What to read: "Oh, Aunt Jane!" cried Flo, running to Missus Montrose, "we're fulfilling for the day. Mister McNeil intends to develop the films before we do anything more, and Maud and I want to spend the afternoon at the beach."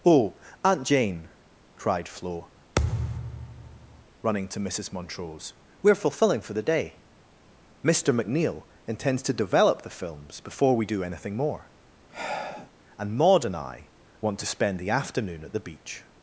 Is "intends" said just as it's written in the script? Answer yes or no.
yes